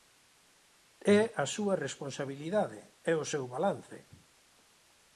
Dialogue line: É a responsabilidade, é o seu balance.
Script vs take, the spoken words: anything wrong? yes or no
yes